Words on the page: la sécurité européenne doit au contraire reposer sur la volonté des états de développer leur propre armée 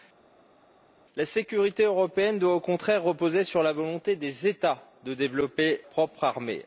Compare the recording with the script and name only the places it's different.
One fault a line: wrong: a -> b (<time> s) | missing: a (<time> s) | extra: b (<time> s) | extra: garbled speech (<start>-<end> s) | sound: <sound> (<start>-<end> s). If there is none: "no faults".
missing: leur (5.8 s)